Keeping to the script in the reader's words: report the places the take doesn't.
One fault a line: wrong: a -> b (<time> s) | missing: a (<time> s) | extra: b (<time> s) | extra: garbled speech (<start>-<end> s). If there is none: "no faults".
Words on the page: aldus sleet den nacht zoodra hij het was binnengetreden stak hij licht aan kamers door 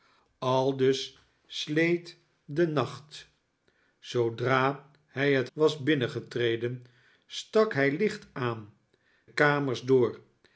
no faults